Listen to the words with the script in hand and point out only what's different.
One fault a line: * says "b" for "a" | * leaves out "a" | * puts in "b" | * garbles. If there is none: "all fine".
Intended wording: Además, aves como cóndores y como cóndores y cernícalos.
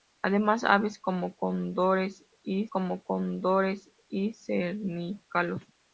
all fine